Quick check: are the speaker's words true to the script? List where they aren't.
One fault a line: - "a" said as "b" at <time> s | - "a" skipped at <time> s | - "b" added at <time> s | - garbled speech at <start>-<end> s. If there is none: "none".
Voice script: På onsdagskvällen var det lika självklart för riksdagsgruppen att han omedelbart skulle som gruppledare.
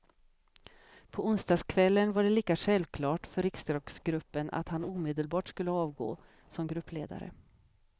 - "avgå" added at 5.7 s